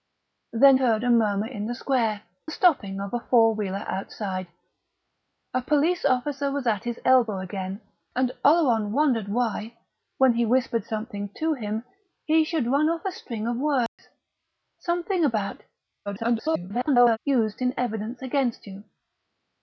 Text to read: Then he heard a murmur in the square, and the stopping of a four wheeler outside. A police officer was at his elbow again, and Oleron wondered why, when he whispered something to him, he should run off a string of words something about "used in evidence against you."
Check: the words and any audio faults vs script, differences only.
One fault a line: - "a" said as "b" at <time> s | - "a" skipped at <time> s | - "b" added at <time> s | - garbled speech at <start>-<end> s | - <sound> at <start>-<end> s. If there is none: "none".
- "he" skipped at 0.8 s
- "and" skipped at 2.2 s
- dropout at 13.9-14.0 s
- garbled speech at 16.1-17.2 s